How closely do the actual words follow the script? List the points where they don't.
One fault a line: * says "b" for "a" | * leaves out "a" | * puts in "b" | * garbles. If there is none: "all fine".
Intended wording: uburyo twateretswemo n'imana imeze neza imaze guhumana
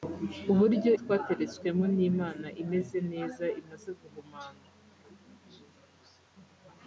all fine